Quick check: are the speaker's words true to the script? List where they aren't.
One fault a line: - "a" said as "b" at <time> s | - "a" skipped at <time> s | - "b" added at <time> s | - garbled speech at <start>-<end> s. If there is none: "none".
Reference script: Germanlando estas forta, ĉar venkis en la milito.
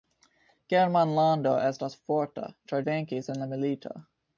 none